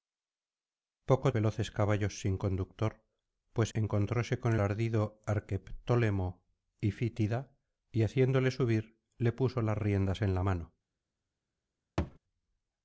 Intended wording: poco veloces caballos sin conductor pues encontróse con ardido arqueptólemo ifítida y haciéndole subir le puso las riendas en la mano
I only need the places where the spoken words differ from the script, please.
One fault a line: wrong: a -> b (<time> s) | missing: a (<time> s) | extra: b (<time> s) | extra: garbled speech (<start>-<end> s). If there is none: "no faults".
no faults